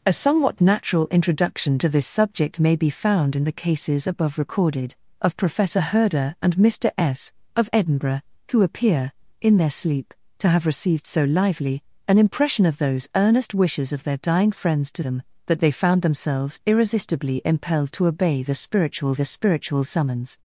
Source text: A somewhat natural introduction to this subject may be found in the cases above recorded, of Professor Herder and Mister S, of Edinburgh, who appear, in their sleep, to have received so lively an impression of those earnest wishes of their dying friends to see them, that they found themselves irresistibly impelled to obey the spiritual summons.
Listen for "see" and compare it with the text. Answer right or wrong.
wrong